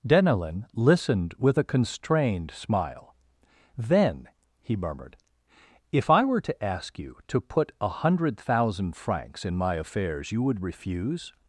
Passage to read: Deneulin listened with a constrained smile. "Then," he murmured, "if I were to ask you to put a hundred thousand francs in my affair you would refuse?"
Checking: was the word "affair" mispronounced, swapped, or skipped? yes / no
yes